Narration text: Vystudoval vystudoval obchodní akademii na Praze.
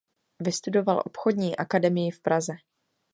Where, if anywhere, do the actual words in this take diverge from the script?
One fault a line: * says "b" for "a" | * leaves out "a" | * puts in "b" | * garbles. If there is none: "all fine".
* leaves out "vystudoval"
* says "v" for "na"